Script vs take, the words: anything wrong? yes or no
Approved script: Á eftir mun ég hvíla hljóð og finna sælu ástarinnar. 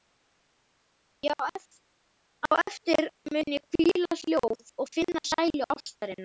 no